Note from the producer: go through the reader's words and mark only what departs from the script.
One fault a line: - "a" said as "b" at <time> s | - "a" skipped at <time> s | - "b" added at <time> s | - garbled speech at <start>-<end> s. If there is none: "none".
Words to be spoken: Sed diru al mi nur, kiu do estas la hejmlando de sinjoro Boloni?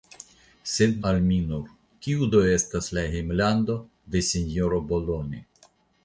- "diru" skipped at 0.9 s